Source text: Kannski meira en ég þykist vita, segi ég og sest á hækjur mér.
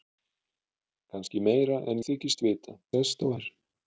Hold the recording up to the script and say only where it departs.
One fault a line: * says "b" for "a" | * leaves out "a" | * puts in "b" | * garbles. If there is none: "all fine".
* leaves out "ég"
* leaves out "segi ég og"
* leaves out "hækjur"